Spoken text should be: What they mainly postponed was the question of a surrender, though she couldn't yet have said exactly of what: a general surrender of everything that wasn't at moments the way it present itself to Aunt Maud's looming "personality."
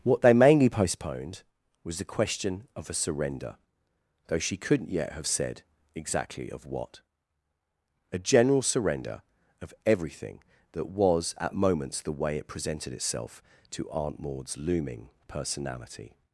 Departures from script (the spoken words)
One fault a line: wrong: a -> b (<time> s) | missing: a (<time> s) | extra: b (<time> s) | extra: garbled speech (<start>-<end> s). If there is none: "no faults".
wrong: wasn't -> was (10.9 s)
wrong: present -> presented (12.5 s)